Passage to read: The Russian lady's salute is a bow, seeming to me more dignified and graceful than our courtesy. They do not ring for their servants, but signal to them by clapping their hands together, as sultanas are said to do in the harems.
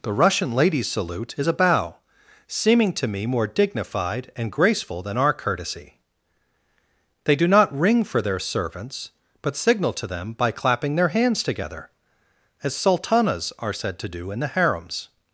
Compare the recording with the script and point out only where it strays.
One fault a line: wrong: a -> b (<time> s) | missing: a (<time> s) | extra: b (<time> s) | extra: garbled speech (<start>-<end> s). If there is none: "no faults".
no faults